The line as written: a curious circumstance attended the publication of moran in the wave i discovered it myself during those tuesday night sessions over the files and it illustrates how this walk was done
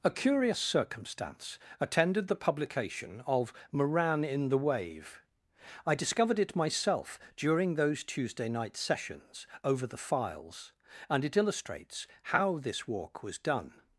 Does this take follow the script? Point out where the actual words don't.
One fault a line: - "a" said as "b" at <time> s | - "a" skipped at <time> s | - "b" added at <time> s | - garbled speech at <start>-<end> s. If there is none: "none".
none